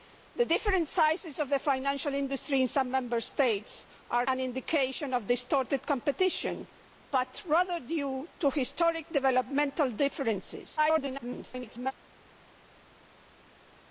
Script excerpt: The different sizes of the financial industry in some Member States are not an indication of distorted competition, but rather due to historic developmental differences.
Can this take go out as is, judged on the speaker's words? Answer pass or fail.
fail